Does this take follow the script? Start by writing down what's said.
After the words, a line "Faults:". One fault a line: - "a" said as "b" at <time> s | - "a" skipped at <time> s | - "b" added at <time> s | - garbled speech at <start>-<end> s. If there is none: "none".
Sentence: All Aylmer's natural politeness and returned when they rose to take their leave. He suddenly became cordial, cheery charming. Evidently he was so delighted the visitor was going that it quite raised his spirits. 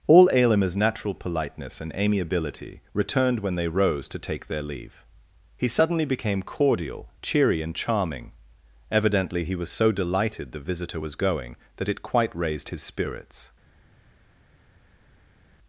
All Aylmer's natural politeness and amiability returned when they rose to take their leave. He suddenly became cordial, cheery and charming. Evidently he was so delighted the visitor was going that it quite raised his spirits.
Faults:
- "amiability" added at 1.9 s
- "and" added at 7.6 s